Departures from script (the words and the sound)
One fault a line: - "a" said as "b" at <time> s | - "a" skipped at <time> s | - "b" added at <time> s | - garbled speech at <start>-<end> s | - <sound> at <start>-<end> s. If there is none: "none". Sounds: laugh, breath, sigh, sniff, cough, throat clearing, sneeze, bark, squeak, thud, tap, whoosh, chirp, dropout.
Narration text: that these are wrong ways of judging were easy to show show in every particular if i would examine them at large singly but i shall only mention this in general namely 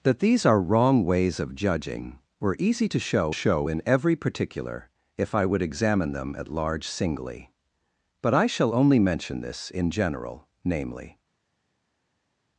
none